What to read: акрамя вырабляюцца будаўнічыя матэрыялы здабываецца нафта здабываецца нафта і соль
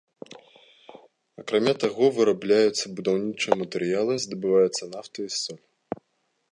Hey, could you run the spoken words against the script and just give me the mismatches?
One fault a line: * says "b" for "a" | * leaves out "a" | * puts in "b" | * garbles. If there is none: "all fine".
* puts in "таго"
* leaves out "здабываецца нафта"